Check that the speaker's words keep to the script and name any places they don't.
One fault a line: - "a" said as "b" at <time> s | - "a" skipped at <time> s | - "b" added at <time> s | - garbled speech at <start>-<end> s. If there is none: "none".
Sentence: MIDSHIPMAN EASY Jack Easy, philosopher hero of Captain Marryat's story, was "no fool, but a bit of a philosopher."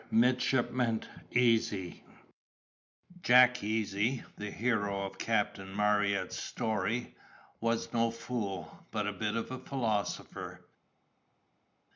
- "philosopher" said as "the" at 4.4 s